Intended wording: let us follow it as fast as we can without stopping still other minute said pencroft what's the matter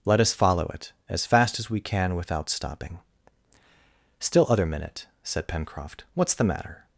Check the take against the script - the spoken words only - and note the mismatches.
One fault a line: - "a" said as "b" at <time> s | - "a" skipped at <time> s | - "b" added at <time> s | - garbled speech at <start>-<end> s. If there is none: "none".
none